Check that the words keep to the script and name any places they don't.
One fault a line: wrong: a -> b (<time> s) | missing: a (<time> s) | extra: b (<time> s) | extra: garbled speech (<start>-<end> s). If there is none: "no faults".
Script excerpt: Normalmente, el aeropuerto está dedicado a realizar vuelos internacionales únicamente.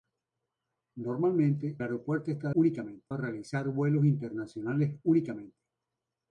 missing: el (1.8 s)
wrong: dedicado -> únicamente (2.5 s)